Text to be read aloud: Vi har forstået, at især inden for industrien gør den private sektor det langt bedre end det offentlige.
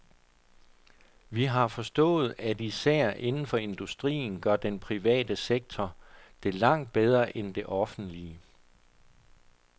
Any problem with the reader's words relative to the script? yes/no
no